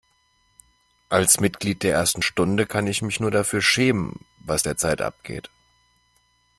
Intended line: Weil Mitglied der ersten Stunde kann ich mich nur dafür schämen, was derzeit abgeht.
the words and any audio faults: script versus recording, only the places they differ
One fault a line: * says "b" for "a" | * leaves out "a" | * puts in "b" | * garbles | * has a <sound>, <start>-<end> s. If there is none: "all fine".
* says "Als" for "Weil"